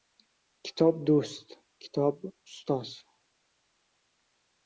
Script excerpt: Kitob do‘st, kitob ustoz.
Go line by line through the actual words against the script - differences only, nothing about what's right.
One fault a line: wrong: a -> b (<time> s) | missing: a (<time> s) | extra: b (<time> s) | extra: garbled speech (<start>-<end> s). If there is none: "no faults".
no faults